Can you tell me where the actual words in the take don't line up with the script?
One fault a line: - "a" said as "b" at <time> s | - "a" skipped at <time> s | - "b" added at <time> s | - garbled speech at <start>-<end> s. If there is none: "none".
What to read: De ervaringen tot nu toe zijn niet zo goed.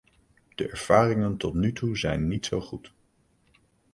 none